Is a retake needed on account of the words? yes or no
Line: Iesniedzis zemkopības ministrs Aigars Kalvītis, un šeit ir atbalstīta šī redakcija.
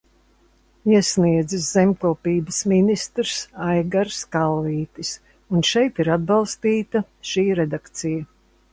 no